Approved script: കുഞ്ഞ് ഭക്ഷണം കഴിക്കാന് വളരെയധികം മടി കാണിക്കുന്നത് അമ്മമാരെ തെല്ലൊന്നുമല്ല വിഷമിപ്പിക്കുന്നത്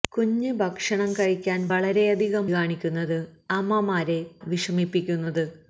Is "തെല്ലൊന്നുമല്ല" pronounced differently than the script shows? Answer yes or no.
yes